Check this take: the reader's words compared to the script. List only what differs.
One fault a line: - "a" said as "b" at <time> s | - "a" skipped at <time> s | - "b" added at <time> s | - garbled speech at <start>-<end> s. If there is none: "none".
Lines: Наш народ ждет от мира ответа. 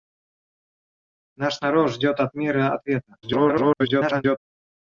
- garbled speech at 3.2-4.4 s